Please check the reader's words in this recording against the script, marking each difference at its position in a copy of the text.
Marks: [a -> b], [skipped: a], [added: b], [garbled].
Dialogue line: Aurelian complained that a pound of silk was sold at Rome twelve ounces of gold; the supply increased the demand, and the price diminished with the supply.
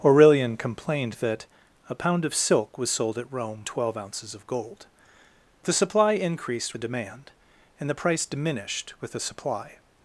Aurelian complained that a pound of silk was sold at Rome twelve ounces of gold; the supply increased the demand, and the price diminished with the supply.